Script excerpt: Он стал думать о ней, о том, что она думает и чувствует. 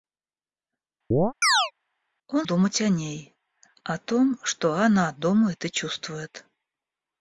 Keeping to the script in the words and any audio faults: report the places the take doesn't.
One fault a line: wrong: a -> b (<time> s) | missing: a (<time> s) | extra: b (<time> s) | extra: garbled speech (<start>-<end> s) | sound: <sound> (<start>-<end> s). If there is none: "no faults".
sound: chirp (1.1-1.7 s)
missing: стал (2.5 s)